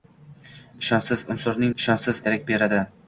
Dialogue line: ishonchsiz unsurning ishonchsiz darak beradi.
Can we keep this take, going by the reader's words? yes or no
yes